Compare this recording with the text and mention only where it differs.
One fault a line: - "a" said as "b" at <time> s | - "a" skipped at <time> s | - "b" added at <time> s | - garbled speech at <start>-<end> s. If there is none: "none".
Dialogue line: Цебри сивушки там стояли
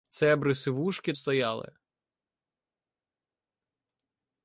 - "там" skipped at 1.1 s